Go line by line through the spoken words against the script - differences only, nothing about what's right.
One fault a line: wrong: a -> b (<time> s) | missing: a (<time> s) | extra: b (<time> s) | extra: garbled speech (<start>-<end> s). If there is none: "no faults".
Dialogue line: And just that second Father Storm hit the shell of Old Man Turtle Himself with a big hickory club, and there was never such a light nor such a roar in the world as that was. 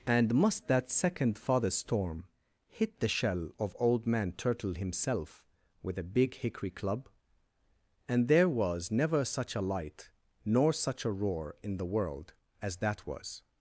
wrong: just -> must (0.3 s)